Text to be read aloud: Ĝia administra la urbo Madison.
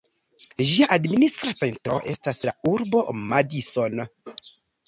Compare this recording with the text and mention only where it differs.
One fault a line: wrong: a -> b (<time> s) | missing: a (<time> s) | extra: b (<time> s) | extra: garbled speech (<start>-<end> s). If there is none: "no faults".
extra: centro estas (1.6 s)